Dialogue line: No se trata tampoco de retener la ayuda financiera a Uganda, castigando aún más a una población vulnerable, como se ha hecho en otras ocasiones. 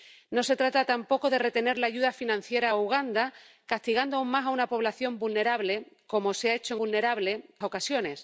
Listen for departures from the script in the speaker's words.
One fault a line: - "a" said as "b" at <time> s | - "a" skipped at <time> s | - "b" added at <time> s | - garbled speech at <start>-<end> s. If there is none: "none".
- "otras" said as "vulnerable" at 6.8 s